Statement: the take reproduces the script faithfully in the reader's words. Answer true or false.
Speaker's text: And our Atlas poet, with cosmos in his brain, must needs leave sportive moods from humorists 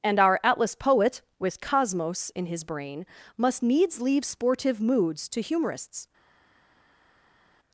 false